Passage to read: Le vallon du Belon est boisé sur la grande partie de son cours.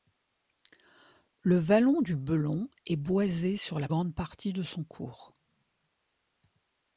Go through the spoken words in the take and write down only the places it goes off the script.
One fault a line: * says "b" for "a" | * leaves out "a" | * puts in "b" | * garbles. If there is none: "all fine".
all fine